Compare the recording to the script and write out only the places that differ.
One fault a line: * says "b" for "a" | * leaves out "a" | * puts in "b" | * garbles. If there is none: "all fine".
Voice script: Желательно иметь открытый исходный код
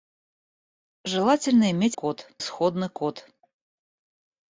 * says "код" for "открытый"